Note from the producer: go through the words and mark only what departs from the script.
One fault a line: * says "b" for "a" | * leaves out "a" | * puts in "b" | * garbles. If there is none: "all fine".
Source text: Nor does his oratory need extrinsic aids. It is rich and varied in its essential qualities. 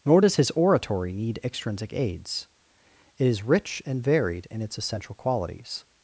all fine